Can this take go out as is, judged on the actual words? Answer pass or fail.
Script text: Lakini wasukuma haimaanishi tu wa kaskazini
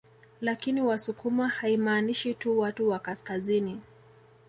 fail